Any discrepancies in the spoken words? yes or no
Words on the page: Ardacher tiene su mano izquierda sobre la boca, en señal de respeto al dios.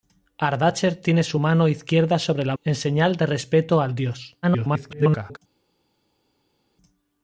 yes